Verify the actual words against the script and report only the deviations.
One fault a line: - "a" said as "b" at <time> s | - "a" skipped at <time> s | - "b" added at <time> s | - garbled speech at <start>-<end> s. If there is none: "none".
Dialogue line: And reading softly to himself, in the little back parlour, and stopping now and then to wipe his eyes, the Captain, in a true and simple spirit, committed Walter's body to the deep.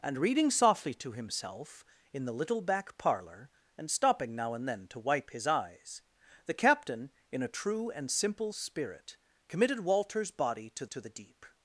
- "to" added at 10.9 s